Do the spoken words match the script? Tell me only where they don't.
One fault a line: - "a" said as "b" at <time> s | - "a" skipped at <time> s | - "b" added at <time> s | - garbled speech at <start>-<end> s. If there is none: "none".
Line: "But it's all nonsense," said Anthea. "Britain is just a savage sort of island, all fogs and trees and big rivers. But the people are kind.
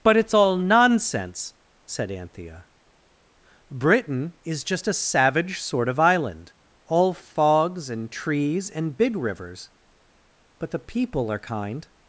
none